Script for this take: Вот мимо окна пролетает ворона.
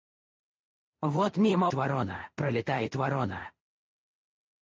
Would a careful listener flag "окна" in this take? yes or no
yes